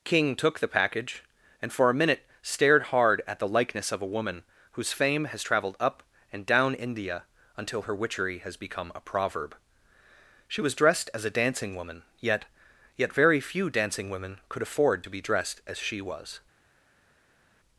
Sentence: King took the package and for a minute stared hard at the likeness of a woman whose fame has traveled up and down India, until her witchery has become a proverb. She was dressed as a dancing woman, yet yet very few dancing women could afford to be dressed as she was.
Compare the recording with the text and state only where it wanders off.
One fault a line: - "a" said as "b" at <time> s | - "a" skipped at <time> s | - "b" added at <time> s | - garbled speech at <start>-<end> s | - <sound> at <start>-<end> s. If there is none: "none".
none